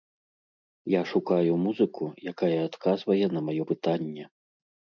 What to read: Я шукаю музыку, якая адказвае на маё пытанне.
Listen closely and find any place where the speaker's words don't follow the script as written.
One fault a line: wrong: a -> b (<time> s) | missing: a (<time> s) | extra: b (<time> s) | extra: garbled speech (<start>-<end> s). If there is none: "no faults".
no faults